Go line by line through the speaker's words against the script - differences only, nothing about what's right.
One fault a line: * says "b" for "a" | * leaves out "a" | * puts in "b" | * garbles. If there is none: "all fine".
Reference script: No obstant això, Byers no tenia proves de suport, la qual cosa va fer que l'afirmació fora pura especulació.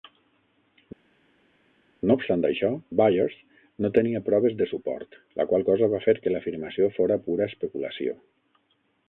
all fine